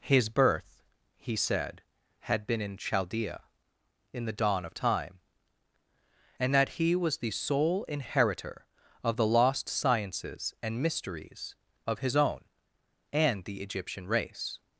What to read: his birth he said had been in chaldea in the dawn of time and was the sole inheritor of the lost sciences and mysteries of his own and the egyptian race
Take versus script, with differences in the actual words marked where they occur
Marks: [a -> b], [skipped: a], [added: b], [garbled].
his birth he said had been in chaldea in the dawn of time and [added: that he] was the sole inheritor of the lost sciences and mysteries of his own and the egyptian race